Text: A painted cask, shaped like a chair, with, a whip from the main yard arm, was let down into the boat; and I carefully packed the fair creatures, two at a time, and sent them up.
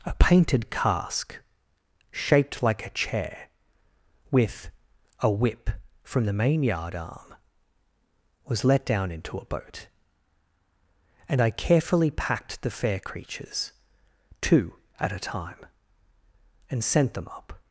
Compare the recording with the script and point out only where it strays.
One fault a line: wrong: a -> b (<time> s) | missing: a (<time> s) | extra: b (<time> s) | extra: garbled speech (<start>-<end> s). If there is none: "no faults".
wrong: the -> a (9.4 s)